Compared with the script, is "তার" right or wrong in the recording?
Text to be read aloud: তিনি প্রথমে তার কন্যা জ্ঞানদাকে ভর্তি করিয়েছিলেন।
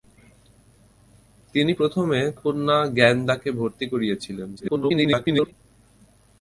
wrong